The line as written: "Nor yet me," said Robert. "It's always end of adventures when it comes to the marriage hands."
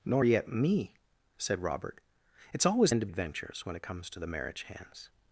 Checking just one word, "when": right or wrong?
right